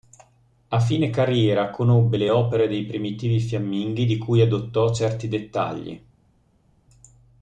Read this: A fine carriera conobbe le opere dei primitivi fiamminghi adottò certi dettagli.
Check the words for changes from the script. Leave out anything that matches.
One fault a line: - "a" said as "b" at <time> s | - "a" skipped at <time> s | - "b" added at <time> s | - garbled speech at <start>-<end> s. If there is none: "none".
- "di cui" added at 4.1 s